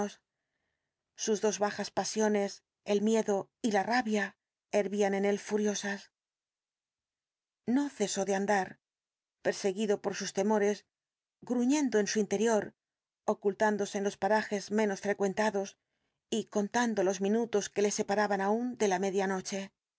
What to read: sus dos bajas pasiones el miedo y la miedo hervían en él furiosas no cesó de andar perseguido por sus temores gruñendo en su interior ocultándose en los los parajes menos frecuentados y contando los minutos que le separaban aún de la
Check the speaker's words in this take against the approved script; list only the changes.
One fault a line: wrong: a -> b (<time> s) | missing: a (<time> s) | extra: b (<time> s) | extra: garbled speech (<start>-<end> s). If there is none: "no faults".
wrong: miedo -> rabia (3.8 s)
missing: los (14.2 s)